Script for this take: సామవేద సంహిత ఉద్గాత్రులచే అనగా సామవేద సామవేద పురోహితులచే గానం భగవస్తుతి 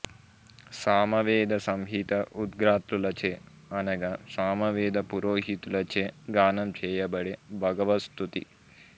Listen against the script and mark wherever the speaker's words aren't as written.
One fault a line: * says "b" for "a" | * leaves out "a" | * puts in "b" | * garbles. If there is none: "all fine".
* leaves out "సామవేద"
* puts in "చేయబడే"